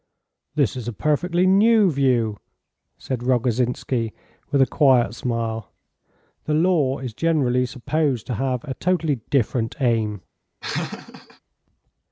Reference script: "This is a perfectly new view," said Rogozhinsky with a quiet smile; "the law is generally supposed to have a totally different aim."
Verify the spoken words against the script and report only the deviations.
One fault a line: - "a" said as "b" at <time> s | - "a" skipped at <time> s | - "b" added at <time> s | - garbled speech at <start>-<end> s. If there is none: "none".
none